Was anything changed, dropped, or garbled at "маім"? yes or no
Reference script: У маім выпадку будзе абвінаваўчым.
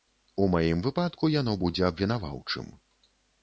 no